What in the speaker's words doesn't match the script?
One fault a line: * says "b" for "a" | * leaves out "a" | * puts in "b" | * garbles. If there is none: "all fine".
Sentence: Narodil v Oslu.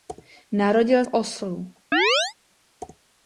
all fine